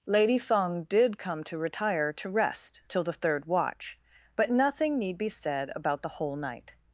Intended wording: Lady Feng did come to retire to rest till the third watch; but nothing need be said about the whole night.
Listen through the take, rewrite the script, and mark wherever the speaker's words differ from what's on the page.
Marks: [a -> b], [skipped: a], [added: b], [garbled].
Lady Feng did come to retire to rest till the third watch; but nothing need be said about the whole night.